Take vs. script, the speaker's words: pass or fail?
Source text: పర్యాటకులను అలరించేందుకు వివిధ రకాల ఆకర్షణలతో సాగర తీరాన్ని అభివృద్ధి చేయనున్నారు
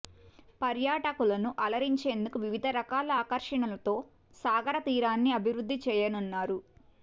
pass